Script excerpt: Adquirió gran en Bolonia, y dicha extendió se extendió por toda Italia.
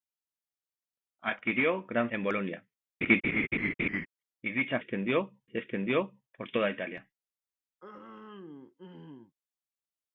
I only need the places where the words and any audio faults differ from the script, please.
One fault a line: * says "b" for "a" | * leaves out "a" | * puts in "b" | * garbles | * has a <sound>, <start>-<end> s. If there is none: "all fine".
* has a laugh, 3.0-4.1 s
* has a throat clearing, 7.8-9.3 s